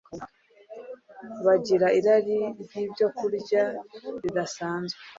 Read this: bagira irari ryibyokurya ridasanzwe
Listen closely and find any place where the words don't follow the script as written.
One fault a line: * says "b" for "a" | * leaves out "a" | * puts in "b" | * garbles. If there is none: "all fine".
all fine